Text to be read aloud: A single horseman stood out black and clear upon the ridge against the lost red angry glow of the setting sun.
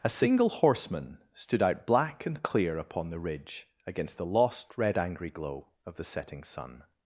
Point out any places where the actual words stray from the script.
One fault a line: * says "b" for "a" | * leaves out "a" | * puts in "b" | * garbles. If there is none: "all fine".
all fine